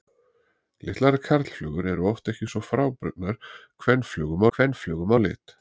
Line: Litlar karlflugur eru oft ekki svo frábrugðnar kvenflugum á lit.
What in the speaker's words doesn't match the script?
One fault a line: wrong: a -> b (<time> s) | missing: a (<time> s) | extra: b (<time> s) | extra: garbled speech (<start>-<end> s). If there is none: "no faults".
extra: kvenflugum (4.6 s)